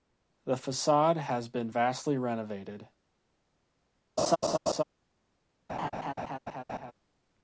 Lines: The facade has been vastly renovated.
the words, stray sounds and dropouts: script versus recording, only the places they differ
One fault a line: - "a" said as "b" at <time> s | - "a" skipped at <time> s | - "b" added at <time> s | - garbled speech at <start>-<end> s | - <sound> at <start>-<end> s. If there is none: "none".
- laugh at 4.2-4.8 s
- laugh at 5.7-6.9 s